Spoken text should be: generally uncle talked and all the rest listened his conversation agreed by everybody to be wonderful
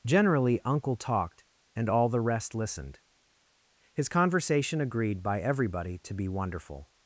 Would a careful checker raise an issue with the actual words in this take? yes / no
no